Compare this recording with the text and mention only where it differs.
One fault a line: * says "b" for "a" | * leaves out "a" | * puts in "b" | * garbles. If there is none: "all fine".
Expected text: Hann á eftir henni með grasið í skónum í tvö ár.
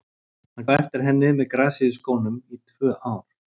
all fine